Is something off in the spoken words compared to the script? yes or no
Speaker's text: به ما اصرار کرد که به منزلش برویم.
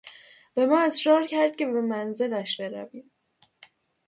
no